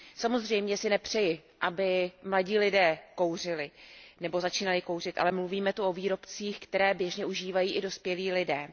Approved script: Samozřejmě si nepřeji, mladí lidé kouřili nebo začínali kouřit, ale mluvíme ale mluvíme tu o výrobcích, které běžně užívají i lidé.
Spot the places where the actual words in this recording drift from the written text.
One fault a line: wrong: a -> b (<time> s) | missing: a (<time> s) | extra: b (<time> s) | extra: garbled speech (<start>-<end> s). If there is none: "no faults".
extra: aby (1.6 s)
missing: ale mluvíme (5.7 s)
extra: dospělí (7.8 s)